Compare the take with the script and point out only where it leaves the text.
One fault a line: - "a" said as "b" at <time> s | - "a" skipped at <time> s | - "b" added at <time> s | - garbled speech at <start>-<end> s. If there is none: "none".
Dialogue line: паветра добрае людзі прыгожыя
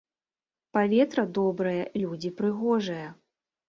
none